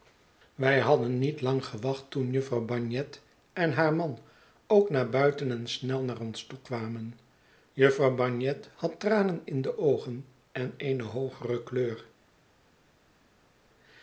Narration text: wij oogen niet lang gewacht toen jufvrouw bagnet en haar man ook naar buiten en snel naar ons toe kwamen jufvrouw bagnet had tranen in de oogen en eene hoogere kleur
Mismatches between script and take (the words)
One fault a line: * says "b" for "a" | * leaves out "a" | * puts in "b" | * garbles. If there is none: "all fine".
* says "hadden" for "oogen"